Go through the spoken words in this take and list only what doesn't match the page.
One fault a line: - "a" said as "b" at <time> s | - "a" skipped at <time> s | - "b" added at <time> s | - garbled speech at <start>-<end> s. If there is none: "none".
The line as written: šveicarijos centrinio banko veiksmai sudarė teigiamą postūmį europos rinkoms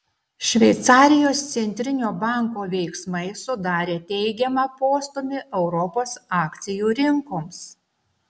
- "akcijų" added at 6.4 s